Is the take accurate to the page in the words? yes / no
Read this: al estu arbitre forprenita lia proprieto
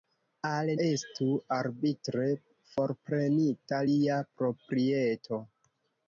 yes